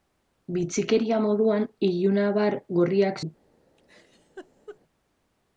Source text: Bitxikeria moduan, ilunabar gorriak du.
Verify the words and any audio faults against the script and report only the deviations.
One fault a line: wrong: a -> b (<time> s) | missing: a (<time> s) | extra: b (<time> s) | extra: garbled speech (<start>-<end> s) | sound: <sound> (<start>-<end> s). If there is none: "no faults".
sound: laugh (3.8-4.8 s)